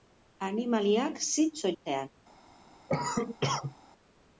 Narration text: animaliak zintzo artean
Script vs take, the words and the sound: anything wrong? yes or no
yes